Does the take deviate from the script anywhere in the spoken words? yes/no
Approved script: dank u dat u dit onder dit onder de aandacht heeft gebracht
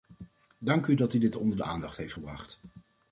yes